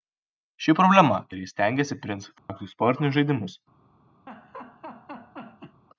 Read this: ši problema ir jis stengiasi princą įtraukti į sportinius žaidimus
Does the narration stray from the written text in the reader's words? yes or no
no